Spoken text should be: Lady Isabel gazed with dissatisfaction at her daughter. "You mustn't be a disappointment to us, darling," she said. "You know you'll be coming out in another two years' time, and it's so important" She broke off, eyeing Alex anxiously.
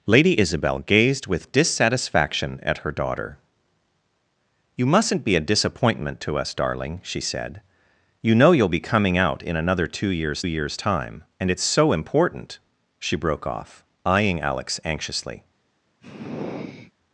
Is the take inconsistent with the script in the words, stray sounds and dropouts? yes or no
yes